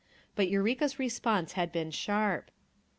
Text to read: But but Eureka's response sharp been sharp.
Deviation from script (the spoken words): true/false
true